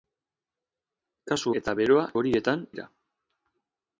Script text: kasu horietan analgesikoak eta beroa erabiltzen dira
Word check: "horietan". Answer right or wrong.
wrong